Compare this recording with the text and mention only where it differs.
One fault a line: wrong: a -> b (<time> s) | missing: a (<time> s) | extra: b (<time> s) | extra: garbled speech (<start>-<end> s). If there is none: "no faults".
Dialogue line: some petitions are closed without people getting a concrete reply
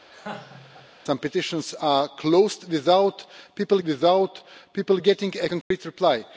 extra: without people (3.8 s)